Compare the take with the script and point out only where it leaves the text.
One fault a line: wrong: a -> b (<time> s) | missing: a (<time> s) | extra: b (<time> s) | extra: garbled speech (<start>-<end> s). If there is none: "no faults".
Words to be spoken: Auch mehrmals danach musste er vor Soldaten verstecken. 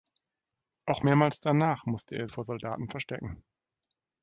no faults